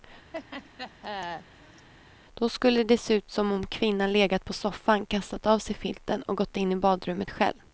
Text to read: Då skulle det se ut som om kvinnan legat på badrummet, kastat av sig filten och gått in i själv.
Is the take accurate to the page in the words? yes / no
no